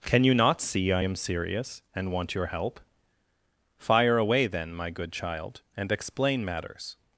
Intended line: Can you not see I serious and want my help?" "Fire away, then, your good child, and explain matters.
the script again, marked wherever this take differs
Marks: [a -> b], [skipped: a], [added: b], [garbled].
Can you not see I [added: am] serious and want [my -> your] help?" "Fire away, then, [your -> my] good child, and explain matters.